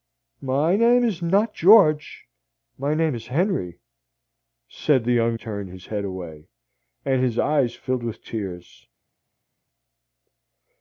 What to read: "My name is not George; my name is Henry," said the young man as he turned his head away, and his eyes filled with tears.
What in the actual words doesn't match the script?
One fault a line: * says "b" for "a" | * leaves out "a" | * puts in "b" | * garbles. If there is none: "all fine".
* leaves out "man as he"